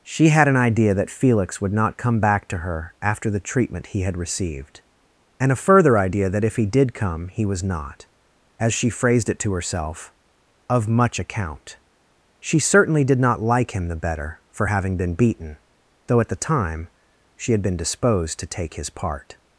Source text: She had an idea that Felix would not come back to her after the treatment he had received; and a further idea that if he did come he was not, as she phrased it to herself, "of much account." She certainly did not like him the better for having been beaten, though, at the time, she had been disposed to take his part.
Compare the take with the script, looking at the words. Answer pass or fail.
pass